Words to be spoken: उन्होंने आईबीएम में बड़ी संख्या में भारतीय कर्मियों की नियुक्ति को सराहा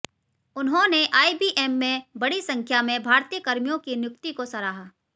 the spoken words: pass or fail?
pass